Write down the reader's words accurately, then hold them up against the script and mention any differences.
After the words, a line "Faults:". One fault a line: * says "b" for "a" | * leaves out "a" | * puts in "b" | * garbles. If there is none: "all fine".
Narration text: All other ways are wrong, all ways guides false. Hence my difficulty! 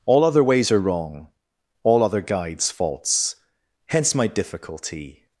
All other ways are wrong, all other guides false. Hence my difficulty!
Faults:
* says "other" for "ways"